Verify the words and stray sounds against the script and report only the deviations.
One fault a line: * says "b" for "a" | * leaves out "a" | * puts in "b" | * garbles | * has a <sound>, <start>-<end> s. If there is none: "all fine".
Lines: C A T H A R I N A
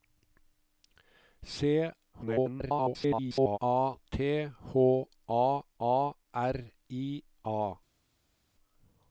* garbles
* puts in "A"
* leaves out "N"